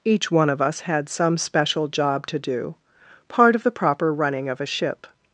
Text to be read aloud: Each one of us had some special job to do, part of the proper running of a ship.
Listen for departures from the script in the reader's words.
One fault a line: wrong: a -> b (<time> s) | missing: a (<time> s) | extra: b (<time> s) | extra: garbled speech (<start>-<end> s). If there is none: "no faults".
no faults